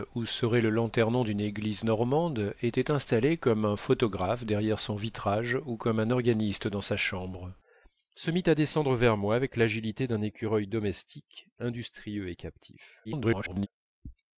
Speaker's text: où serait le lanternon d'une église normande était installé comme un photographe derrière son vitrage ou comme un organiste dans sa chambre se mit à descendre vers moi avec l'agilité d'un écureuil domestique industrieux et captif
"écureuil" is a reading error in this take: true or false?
false